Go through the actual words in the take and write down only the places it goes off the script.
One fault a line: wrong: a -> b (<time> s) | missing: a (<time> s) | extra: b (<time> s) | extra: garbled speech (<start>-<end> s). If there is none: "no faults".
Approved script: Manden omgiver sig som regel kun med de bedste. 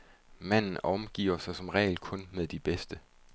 no faults